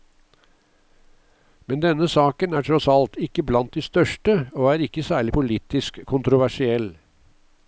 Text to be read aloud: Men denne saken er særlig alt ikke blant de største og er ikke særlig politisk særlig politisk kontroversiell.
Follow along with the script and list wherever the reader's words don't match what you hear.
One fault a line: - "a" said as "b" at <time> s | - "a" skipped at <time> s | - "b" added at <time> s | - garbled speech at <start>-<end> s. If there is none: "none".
- "særlig" said as "tross" at 2.7 s
- "særlig politisk" skipped at 6.0 s